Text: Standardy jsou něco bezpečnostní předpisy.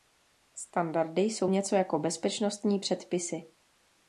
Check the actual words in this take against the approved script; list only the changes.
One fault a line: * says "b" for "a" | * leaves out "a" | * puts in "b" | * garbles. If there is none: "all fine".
* puts in "jako"